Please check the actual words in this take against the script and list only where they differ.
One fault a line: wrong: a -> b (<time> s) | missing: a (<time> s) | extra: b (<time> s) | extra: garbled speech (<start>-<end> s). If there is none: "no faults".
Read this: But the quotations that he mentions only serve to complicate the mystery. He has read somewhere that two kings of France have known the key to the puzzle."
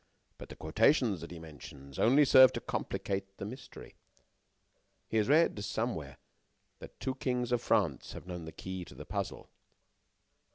no faults